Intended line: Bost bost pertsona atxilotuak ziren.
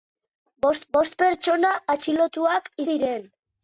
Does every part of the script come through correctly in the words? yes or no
yes